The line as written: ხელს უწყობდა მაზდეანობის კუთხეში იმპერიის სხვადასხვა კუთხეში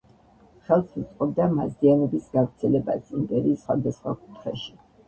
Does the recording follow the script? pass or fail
fail